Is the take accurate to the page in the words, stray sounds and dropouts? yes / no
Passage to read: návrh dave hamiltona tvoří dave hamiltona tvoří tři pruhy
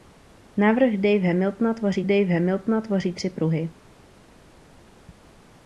yes